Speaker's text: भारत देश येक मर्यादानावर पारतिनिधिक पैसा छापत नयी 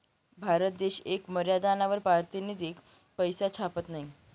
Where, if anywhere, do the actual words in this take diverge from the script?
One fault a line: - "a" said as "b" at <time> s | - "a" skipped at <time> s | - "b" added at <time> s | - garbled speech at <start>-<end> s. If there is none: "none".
none